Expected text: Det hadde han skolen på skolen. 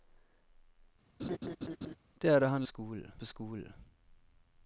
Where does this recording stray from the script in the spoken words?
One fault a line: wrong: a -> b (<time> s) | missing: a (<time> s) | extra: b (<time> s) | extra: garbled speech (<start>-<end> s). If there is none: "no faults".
no faults